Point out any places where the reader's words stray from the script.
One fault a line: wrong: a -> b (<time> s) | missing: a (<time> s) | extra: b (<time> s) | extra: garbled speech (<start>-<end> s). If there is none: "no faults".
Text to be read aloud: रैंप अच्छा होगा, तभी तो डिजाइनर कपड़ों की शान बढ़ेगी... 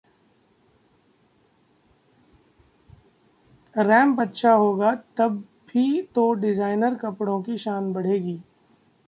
no faults